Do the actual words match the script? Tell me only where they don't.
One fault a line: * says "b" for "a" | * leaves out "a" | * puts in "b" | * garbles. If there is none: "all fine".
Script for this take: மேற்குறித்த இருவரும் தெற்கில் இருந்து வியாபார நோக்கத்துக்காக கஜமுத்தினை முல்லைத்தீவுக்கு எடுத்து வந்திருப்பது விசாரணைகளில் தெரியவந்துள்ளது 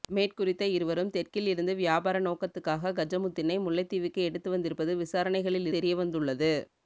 all fine